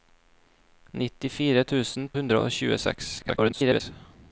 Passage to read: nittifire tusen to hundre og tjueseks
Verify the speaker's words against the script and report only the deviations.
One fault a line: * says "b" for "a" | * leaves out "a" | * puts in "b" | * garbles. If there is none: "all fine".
* leaves out "to"
* garbles